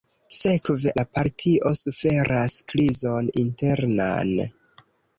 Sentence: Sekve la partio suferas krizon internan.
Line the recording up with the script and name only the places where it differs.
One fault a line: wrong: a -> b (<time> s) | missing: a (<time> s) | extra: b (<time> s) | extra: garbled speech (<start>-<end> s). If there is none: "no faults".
no faults